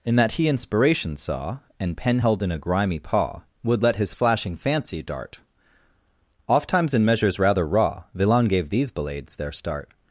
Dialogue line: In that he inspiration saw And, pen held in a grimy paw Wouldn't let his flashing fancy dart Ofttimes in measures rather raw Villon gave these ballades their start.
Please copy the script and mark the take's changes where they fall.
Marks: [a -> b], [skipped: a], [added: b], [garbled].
In that he inspiration saw And, pen held in a grimy paw [Wouldn't -> Would] let his flashing fancy dart Ofttimes in measures rather raw Villon gave these ballades their start.